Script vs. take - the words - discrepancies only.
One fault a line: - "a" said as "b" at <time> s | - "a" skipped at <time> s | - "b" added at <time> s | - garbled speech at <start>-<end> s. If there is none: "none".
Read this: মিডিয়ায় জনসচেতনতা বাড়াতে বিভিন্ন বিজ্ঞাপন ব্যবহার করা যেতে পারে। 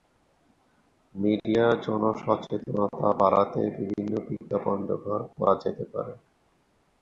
none